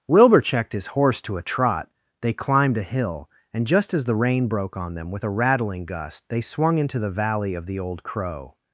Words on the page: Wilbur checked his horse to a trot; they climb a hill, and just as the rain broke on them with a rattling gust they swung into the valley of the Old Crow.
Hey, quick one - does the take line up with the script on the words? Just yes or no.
no